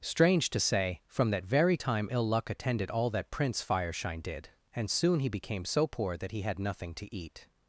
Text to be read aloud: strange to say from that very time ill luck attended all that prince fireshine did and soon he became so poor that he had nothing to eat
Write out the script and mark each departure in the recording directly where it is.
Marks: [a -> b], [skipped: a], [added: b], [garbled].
strange to say from that very time ill luck attended all that prince fireshine did and soon he became so poor that he had nothing to eat